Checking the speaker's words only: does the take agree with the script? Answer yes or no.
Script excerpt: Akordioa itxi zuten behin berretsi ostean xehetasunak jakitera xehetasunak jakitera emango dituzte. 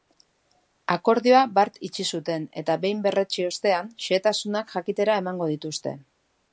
no